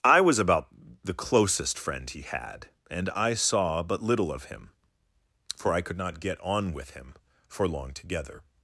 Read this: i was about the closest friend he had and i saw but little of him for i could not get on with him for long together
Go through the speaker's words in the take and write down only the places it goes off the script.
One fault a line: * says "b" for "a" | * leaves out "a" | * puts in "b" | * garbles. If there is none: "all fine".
all fine